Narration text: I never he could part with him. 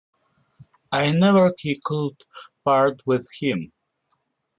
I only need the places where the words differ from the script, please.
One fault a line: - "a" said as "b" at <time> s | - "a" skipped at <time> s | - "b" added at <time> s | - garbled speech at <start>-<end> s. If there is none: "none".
none